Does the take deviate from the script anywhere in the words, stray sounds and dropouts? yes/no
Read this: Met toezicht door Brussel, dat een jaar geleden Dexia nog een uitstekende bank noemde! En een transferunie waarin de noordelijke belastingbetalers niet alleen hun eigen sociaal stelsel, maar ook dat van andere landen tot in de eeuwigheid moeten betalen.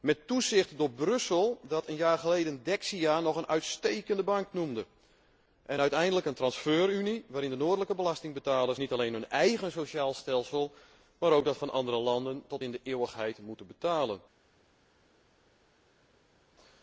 yes